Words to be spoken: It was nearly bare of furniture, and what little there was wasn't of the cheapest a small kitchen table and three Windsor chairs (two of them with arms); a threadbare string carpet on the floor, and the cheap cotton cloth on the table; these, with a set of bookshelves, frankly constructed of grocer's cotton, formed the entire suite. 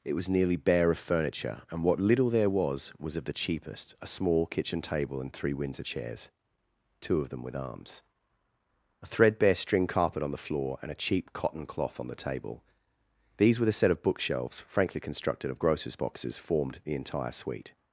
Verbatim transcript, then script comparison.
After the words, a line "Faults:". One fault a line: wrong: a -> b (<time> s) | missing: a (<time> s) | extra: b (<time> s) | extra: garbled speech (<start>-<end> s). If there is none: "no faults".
It was nearly bare of furniture, and what little there was was of the cheapest a small kitchen table and three Windsor chairs (two of them with arms); a threadbare string carpet on the floor, and a cheap cotton cloth on the table; these, with a set of bookshelves, frankly constructed of grocer's boxes, formed the entire suite.
Faults:
wrong: wasn't -> was (3.0 s)
wrong: the -> a (10.9 s)
wrong: cotton -> boxes (16.0 s)